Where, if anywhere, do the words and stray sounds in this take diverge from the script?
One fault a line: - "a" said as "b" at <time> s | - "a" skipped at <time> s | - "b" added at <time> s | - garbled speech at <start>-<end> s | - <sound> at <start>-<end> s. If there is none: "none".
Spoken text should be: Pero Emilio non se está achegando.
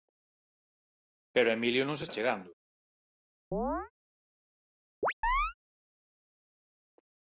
- "está" skipped at 2.0 s
- chirp at 3.5-3.9 s
- chirp at 5.0-5.5 s